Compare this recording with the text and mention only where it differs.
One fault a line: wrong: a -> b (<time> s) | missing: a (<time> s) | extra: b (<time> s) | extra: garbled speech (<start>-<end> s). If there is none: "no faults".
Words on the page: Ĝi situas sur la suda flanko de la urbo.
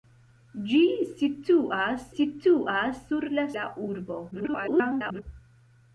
extra: situas (2.2 s)
missing: suda flanko de (3.4 s)
extra: garbled speech (4.3-5.2 s)